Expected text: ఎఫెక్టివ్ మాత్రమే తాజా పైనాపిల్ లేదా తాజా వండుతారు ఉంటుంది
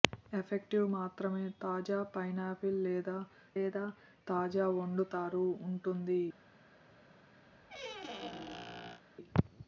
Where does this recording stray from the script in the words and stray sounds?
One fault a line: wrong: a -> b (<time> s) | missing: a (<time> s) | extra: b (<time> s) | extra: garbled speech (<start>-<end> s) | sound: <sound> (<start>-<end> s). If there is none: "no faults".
extra: లేదా (3.6 s)
sound: squeak (7.5-9.0 s)